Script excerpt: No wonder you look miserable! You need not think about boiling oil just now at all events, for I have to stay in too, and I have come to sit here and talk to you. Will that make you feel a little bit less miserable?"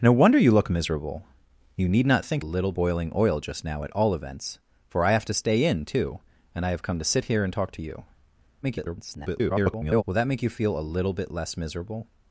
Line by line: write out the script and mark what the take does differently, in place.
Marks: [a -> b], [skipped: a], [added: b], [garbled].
No wonder you look miserable! You need not think [about -> little] boiling oil just now at all events, for I have to stay in too, and I have come to sit here and talk to you. [garbled] Will that make you feel a little bit less miserable?"